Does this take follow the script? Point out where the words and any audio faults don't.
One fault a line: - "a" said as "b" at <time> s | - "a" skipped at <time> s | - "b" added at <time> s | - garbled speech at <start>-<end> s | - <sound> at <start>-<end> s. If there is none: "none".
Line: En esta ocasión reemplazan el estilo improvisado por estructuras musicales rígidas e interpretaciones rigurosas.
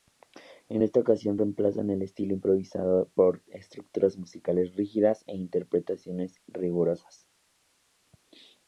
none